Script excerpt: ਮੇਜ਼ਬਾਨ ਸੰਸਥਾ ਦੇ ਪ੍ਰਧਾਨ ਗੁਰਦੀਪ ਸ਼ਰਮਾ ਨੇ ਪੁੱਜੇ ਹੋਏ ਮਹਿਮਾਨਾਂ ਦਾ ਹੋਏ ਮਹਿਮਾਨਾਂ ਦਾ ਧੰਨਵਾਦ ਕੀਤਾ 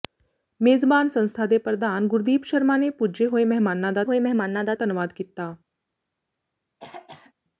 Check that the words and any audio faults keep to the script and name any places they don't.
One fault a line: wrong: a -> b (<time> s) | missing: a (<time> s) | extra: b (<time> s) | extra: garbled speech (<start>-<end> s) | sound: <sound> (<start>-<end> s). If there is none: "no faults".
sound: throat clearing (6.8-7.3 s)